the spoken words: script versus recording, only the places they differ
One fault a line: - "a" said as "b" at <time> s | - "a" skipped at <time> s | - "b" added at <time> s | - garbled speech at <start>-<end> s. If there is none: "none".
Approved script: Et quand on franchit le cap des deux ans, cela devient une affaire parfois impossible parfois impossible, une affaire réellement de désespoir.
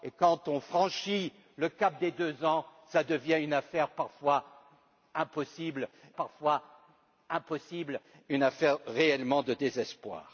none